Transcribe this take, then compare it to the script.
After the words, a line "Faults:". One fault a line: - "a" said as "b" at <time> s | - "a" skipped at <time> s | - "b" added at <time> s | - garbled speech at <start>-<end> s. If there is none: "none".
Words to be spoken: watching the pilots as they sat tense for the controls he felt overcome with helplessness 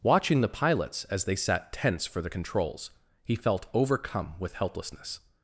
watching the pilots as they sat tense for the controls he felt overcome with helplessness
Faults:
none